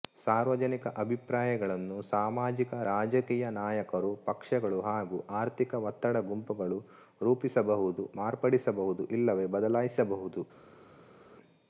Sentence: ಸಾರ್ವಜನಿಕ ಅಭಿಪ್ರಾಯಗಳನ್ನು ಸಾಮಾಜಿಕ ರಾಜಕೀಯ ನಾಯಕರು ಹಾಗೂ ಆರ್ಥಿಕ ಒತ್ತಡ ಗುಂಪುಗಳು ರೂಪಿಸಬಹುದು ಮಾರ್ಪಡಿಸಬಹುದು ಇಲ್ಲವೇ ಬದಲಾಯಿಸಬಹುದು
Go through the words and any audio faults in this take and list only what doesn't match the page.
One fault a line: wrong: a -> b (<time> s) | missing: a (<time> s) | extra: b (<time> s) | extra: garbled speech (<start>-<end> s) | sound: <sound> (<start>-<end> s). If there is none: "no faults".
extra: ಪಕ್ಷಗಳು (4.3 s)